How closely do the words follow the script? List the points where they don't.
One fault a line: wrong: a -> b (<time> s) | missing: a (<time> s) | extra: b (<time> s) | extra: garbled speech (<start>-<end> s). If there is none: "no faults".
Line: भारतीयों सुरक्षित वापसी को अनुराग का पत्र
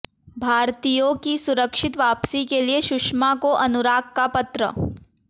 extra: की (1.2 s)
extra: के लिए सुषमा (2.5 s)